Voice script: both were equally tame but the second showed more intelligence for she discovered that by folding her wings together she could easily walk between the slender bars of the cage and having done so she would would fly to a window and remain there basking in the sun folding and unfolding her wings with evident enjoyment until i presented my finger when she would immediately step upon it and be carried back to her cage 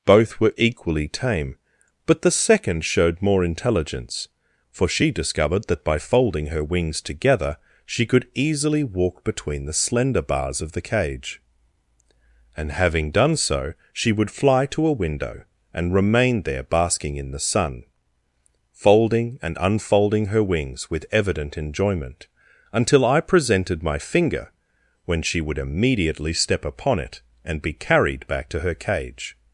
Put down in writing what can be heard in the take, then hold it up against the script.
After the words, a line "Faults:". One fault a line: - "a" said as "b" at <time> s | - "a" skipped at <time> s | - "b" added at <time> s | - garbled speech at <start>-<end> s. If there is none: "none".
both were equally tame but the second showed more intelligence for she discovered that by folding her wings together she could easily walk between the slender bars of the cage and having done so she would fly to a window and remain there basking in the sun folding and unfolding her wings with evident enjoyment until i presented my finger when she would immediately step upon it and be carried back to her cage
Faults:
- "would" skipped at 14.3 s